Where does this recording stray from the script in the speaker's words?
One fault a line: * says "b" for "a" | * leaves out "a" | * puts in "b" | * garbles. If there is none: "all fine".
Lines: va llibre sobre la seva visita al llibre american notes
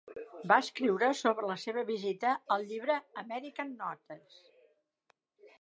* says "escriure" for "llibre"